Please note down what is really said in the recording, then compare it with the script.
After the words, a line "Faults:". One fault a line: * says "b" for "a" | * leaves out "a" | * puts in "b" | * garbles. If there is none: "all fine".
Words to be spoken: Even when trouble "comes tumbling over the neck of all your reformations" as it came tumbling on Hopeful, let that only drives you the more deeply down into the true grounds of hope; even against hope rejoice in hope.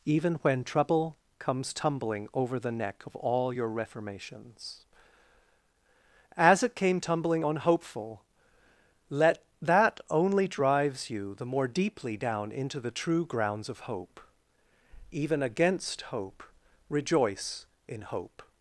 Even when trouble "comes tumbling over the neck of all your reformations" as it came tumbling on Hopeful, let that only drives you the more deeply down into the true grounds of hope; even against hope rejoice in hope.
Faults:
all fine